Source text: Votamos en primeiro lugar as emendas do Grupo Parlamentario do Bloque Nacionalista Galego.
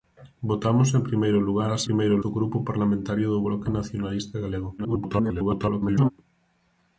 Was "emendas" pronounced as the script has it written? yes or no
no